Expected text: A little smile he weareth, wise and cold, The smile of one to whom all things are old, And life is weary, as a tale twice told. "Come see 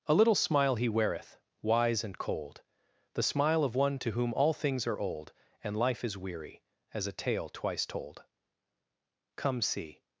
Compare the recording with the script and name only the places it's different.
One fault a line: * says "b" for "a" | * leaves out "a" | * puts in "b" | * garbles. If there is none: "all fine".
all fine